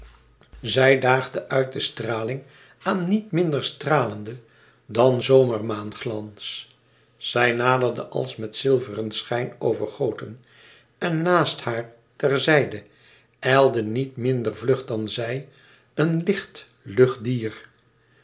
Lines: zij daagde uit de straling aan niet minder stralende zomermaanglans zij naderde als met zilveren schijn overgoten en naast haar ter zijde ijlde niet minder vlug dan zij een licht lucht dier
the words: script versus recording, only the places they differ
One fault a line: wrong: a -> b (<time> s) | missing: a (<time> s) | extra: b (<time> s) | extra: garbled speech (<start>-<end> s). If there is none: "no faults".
extra: dan (4.8 s)